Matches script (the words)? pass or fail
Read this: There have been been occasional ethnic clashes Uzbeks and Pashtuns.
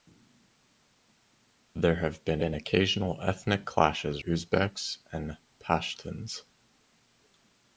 pass